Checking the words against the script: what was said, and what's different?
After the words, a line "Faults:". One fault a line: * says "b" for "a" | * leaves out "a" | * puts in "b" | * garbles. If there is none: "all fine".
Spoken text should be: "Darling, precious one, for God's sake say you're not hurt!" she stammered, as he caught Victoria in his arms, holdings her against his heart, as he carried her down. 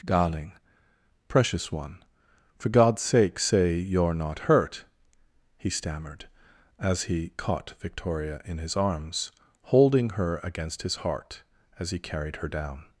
"Darling, precious one, for God's sake say you're not hurt!" he stammered, as he caught Victoria in his arms, holding her against his heart, as he carried her down.
Faults:
* says "he" for "she"
* says "holding" for "holdings"